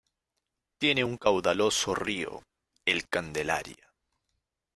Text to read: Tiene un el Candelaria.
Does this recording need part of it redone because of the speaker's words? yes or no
yes